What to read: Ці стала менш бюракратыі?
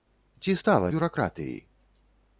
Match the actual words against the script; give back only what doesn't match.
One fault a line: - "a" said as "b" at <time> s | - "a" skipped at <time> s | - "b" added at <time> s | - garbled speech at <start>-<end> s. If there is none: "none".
- "менш" skipped at 0.9 s